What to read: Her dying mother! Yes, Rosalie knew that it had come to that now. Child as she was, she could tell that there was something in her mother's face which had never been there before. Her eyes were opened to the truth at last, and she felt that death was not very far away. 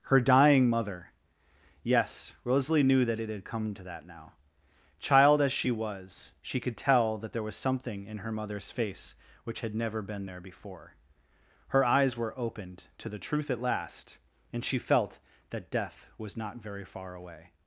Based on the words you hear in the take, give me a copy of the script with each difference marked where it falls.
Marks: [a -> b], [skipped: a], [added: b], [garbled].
Her dying mother! Yes, Rosalie knew that it had come to that now. Child as she was, she could tell that there was something in her mother's face which had never been there before. Her eyes were opened to the truth at last, and she felt that death was not very far away.